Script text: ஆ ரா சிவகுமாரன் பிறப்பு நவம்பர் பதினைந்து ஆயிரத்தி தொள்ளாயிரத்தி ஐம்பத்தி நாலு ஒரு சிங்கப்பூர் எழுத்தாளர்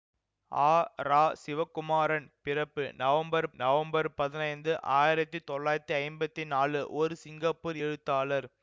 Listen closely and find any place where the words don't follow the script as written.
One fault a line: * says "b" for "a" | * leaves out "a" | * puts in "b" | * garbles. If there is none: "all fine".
* puts in "நவம்பர்"